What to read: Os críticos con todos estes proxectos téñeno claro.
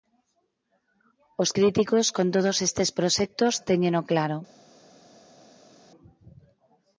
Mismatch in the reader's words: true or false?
false